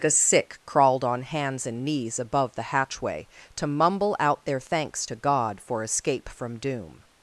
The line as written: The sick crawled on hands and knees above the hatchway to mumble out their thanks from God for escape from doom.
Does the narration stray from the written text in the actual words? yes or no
yes